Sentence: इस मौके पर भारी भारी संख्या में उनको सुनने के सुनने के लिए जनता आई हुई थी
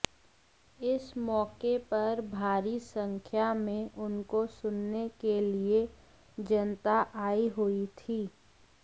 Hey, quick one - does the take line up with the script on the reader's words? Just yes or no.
no